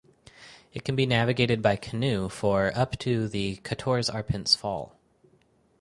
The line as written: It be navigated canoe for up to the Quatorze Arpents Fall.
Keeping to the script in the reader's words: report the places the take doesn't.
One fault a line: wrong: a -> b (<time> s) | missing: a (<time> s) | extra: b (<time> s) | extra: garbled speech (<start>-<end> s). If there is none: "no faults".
extra: can (0.8 s)
extra: by (1.6 s)